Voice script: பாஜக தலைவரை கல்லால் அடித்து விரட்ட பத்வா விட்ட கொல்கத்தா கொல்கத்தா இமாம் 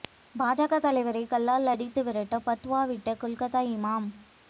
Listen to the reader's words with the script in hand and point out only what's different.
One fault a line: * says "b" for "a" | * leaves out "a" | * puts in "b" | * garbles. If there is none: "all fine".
* leaves out "கொல்கத்தா"